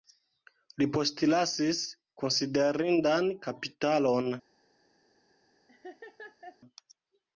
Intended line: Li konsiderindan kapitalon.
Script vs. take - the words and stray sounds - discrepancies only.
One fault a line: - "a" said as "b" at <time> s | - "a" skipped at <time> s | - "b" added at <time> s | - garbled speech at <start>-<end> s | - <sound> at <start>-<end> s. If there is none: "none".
- "postlasis" added at 1.0 s
- laugh at 5.7-6.6 s